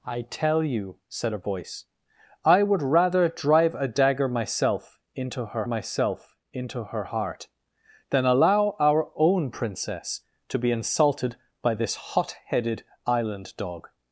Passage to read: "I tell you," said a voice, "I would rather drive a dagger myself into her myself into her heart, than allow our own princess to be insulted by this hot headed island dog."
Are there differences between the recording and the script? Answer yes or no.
no